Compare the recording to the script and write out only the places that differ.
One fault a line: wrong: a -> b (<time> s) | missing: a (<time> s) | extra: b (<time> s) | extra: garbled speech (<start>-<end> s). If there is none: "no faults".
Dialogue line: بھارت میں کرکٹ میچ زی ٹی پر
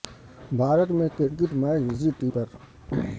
no faults